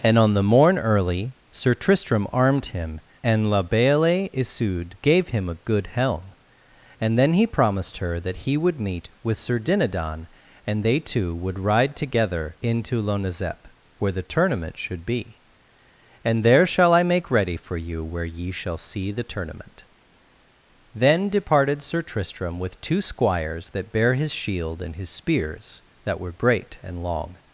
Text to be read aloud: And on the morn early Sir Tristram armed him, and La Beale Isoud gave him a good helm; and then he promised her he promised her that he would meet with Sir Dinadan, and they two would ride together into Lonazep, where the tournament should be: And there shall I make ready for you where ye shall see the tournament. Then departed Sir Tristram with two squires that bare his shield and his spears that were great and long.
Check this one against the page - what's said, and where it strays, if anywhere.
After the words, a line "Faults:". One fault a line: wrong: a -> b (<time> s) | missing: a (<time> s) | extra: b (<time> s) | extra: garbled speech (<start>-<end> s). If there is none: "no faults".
And on the morn early Sir Tristram armed him, and La Beale Isoud gave him a good helm; and then he promised her that he would meet with Sir Dinadan, and they two would ride together into Lonazep, where the tournament should be: And there shall I make ready for you where ye shall see the tournament. Then departed Sir Tristram with two squires that bare his shield and his spears that were great and long.
Faults:
missing: he promised her (8.2 s)